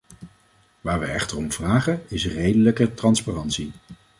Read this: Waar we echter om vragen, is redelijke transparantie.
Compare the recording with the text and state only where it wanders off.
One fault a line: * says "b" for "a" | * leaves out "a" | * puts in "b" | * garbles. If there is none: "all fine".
all fine